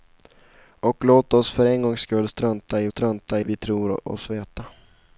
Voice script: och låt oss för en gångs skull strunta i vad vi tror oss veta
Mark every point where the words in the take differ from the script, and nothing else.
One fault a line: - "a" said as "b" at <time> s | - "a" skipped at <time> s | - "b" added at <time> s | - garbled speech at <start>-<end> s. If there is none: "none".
- "vad" said as "strunta" at 2.9 s